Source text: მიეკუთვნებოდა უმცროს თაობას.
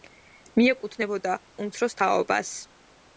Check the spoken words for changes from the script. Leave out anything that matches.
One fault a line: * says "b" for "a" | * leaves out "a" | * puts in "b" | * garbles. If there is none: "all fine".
all fine